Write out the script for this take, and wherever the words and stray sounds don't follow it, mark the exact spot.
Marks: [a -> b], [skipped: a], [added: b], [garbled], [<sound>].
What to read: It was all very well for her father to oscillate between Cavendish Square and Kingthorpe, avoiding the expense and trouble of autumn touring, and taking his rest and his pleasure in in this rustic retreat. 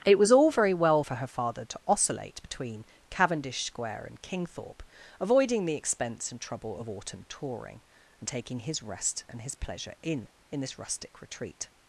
It was all very well for her father to oscillate between Cavendish Square and Kingthorpe, avoiding the expense and trouble of autumn touring, and taking his rest and his pleasure in in this rustic retreat.